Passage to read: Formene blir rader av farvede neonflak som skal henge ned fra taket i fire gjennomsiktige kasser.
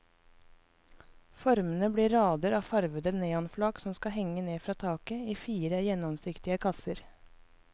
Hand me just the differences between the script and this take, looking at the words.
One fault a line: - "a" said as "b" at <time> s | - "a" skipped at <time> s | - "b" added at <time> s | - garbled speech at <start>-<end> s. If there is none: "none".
none